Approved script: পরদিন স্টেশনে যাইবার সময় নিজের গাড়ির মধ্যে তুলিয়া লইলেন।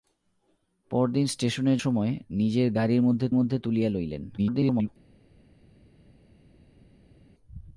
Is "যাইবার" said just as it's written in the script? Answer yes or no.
no